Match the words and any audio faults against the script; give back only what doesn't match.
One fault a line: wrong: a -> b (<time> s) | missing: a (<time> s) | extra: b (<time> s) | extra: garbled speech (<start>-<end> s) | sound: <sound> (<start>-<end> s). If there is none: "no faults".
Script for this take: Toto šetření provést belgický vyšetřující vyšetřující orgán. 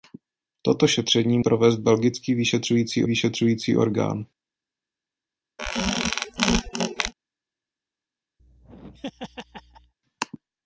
sound: squeak (5.6-7.1 s)
sound: laugh (8.4-9.9 s)